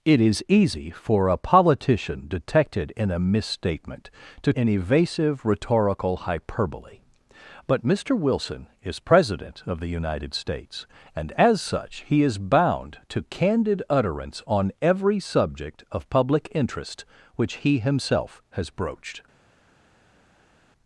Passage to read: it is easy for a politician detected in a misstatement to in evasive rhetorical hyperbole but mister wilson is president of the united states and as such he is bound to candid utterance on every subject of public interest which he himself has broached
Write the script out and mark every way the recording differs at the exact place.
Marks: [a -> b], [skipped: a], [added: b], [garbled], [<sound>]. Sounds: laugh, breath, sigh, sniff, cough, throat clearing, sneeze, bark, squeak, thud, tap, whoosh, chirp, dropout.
it is easy for a politician detected in a misstatement to in evasive rhetorical hyperbole but mister wilson is president of the united states and as such he is bound to candid utterance on every subject of public interest which he himself has broached